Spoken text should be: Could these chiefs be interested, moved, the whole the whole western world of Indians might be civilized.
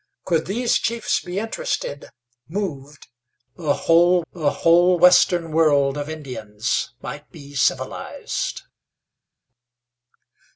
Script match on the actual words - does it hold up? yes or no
yes